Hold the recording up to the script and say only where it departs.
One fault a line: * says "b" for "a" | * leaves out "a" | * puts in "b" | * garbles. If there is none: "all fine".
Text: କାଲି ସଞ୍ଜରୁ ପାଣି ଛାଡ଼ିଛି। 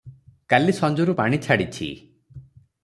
all fine